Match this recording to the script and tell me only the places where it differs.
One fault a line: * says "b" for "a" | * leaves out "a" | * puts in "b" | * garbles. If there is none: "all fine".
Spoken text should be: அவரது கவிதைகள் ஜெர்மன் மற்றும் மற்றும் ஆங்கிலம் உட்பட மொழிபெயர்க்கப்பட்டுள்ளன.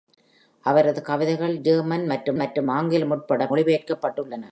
all fine